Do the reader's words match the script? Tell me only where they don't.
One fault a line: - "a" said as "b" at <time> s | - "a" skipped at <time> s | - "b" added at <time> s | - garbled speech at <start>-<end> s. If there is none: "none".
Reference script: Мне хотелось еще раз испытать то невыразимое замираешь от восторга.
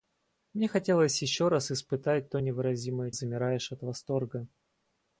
none